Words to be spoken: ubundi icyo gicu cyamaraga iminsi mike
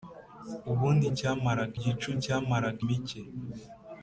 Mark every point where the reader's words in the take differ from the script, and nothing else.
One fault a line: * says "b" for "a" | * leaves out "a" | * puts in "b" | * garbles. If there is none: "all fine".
* says "cyamaraga" for "icyo"
* leaves out "iminsi"